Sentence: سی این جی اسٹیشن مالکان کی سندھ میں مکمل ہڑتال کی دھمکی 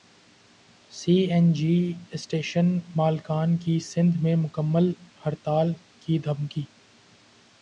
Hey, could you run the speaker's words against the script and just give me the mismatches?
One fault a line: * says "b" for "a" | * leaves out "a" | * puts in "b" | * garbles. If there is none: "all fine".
all fine